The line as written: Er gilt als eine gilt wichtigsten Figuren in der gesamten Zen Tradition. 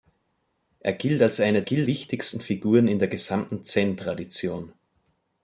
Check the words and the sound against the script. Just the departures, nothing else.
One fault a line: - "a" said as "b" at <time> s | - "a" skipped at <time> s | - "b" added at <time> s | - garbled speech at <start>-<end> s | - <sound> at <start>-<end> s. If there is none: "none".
none